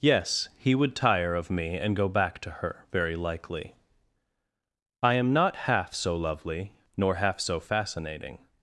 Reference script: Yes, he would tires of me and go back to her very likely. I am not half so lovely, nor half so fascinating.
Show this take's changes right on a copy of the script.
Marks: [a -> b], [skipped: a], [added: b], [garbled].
Yes, he would [tires -> tire] of me and go back to her very likely. I am not half so lovely, nor half so fascinating.